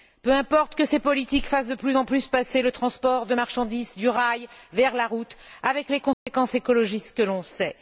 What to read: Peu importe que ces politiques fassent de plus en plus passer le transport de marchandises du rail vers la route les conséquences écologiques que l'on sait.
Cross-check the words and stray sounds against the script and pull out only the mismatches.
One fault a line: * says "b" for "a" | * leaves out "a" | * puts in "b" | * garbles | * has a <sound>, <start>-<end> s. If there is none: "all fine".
* puts in "avec"
* has a dropout, 6.1-6.3 s